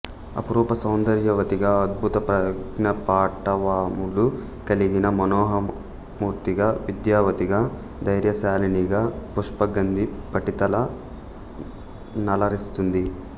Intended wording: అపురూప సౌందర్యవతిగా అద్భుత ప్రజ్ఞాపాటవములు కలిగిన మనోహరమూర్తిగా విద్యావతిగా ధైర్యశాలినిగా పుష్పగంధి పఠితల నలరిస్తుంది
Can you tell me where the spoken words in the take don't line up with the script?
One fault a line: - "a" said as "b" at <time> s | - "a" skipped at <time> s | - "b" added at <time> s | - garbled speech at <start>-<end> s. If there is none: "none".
none